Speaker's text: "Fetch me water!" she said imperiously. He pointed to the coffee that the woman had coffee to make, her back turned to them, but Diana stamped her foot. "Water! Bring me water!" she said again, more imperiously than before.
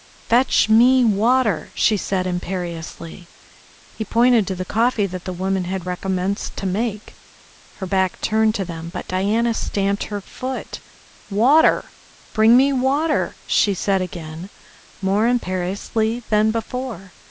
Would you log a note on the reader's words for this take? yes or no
yes